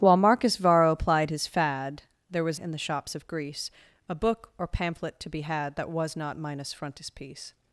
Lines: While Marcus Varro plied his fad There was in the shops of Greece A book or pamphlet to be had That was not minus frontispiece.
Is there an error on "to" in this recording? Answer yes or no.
no